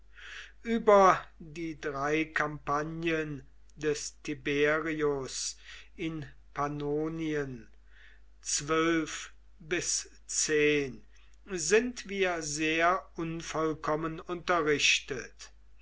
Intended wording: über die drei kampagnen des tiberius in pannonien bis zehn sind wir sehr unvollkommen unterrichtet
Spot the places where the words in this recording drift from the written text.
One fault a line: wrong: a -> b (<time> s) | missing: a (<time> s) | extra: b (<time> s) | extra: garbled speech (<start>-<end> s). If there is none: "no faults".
no faults